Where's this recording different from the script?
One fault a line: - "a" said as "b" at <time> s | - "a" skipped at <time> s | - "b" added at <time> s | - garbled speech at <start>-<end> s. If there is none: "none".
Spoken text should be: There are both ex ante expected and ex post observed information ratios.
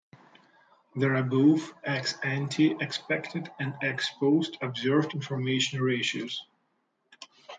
none